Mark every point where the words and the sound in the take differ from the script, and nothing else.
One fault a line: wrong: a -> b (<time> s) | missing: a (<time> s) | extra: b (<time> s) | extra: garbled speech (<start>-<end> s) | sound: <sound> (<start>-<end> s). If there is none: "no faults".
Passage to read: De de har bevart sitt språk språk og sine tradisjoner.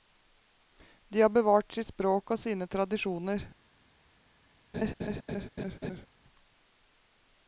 missing: de (1.2 s)
missing: språk (2.3 s)
sound: laugh (4.7-6.1 s)